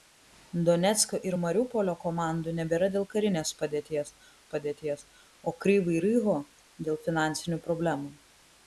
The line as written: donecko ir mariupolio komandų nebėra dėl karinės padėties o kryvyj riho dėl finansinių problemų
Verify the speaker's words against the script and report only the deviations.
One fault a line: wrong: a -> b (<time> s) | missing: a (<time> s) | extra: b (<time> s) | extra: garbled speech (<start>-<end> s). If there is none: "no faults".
extra: padėties (4.6 s)